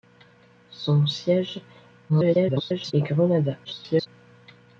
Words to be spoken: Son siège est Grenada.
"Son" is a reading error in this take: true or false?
false